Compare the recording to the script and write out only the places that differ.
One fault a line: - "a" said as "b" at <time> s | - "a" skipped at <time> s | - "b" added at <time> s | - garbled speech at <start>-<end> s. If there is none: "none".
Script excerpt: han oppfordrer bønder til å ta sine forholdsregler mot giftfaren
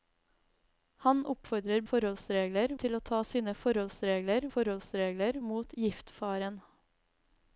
- "bønder" said as "forholdsregler" at 1.9 s
- "forholdsregler" added at 4.5 s